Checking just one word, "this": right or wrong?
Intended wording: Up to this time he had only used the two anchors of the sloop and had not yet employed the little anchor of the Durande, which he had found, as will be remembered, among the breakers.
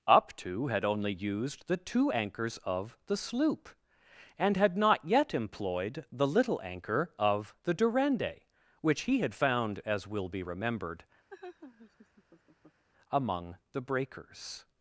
wrong